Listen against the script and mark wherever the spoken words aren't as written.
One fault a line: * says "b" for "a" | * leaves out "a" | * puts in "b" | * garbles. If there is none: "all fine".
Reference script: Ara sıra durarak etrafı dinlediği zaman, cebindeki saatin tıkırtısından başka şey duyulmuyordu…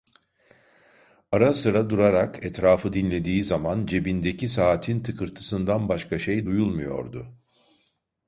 all fine